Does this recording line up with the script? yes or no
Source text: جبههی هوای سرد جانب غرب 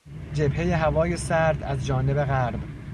no